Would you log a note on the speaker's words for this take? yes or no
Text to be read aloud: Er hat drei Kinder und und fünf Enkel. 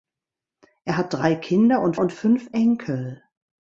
no